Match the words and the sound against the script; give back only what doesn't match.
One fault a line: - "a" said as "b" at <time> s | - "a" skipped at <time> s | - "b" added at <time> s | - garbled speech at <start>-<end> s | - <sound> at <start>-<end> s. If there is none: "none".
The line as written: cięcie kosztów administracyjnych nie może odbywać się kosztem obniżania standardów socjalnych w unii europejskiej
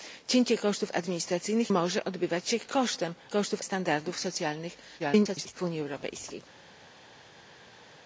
- "nie" skipped at 1.7 s
- "obniżania" said as "kosztów" at 3.3 s
- garbled speech at 5.0-5.5 s